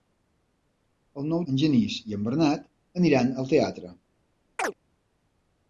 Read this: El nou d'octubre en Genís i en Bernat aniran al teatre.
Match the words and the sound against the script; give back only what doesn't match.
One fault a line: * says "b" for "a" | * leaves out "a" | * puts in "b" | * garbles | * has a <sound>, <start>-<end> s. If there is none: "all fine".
* leaves out "d'octubre"
* has a chirp, 4.6-4.7 s